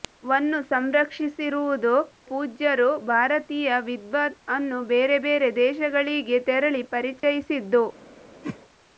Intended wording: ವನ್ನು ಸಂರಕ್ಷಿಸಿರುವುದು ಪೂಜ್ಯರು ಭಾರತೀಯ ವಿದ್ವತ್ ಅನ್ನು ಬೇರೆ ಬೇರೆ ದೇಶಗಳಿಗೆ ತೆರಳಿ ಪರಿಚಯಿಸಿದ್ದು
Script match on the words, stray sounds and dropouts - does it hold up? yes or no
no